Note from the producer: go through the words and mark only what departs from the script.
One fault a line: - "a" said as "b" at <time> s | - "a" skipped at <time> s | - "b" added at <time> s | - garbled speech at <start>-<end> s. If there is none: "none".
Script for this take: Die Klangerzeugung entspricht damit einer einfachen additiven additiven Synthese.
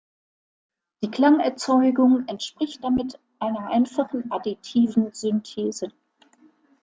- "additiven" skipped at 5.1 s